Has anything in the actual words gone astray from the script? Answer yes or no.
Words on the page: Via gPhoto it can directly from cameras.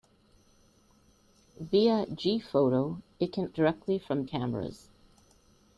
no